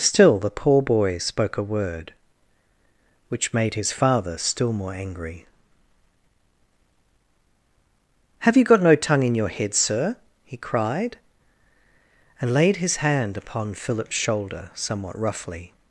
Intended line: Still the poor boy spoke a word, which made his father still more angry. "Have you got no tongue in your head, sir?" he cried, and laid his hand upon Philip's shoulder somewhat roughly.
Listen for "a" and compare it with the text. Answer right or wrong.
right